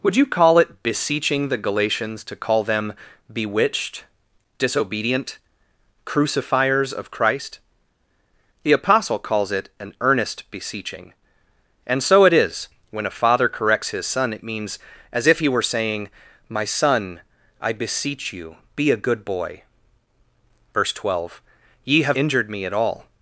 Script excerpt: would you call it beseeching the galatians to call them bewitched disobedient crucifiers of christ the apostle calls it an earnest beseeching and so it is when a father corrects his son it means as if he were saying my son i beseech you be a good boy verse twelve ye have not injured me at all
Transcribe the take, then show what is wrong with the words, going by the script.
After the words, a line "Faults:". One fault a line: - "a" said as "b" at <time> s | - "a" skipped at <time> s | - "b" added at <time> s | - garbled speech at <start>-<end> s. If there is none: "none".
would you call it beseeching the galatians to call them bewitched disobedient crucifiers of christ the apostle calls it an earnest beseeching and so it is when a father corrects his son it means as if he were saying my son i beseech you be a good boy verse twelve ye have injured me at all
Faults:
- "not" skipped at 22.2 s